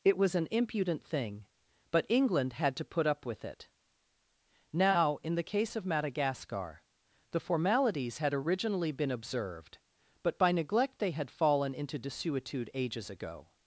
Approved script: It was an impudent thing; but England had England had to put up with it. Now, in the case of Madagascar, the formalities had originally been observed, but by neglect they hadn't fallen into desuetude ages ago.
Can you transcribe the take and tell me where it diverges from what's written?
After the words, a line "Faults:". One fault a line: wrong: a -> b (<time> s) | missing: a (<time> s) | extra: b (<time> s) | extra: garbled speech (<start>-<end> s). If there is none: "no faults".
It was an impudent thing; but England had to put up with it. Now, in the case of Madagascar, the formalities had originally been observed, but by neglect they had fallen into desuetude ages ago.
Faults:
missing: England had (2.8 s)
wrong: hadn't -> had (11.1 s)